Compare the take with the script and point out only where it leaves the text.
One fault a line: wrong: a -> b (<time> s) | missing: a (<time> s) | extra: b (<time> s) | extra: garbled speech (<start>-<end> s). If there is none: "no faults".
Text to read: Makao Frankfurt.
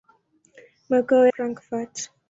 no faults